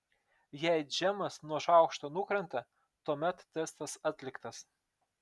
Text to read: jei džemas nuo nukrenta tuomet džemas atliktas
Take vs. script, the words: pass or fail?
fail